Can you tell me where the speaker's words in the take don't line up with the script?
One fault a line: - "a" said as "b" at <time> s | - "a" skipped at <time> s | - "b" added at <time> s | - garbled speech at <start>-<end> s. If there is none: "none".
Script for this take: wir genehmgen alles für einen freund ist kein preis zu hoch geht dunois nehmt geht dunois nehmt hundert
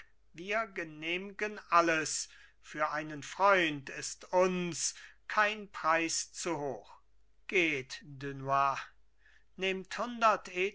- "uns" added at 4.3 s
- "geht dunois nehmt" skipped at 10.0 s